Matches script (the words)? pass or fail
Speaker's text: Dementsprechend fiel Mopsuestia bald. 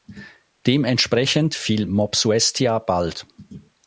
pass